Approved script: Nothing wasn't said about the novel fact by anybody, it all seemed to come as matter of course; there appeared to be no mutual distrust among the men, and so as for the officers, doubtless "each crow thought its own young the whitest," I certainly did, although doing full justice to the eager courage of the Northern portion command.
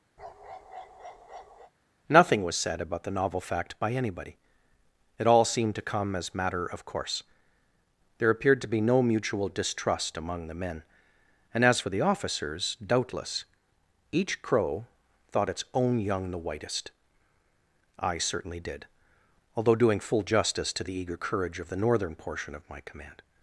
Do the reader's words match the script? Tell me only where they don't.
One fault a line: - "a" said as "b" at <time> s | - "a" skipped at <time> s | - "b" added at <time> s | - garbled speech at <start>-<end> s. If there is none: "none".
- "wasn't" said as "was" at 2.4 s
- "so" skipped at 11.6 s
- "of my" added at 22.5 s